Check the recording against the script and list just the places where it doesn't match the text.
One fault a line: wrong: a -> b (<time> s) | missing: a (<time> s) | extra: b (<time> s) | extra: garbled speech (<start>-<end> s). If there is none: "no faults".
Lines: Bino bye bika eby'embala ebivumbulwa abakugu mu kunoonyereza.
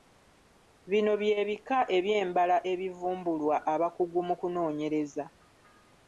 no faults